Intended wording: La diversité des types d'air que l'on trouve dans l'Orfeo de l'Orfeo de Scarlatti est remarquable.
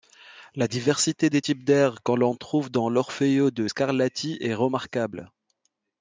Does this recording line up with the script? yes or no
no